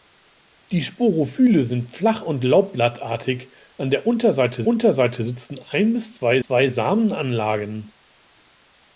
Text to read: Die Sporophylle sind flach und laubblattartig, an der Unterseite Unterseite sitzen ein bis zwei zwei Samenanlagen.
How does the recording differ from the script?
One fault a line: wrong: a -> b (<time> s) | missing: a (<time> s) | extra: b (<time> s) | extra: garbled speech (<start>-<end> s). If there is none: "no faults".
no faults